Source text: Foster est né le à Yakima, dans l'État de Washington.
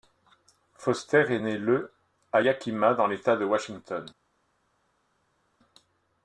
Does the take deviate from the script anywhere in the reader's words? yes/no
no